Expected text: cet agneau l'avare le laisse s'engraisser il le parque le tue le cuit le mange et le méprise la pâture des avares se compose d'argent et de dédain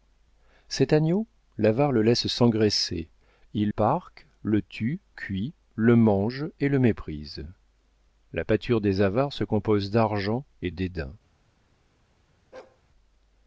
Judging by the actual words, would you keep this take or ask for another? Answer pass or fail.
fail